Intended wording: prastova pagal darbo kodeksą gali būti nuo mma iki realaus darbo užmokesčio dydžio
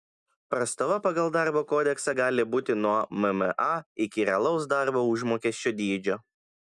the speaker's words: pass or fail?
pass